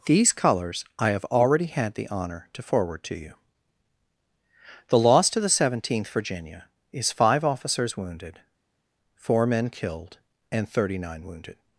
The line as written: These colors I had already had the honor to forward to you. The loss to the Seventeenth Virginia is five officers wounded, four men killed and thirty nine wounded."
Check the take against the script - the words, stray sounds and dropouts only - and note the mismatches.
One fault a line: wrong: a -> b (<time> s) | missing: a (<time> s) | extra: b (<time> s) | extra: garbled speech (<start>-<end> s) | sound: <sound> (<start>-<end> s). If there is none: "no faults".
wrong: had -> have (1.1 s)